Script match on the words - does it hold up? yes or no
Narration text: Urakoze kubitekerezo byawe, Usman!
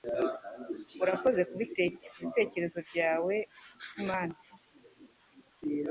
yes